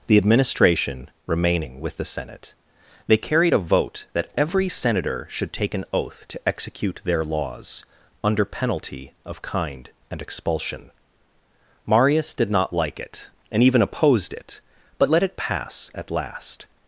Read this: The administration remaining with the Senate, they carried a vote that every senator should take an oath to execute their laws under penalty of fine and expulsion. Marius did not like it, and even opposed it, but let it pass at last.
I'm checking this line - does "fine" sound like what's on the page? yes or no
no